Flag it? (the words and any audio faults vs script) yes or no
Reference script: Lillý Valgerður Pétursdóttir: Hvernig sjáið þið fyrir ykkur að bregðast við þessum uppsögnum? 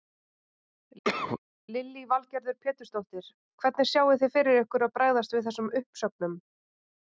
yes